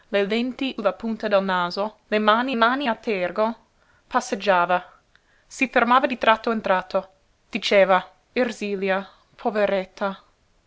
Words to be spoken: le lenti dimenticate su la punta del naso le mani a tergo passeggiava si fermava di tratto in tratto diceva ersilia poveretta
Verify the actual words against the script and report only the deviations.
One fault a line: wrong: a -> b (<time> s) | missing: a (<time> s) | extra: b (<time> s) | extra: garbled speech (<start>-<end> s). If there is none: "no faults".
missing: dimenticate su (0.8 s)
extra: mani (2.5 s)